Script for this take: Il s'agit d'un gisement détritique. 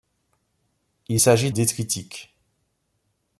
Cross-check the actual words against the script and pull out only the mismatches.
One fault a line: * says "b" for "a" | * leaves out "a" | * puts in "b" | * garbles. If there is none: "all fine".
* leaves out "d'un gisement"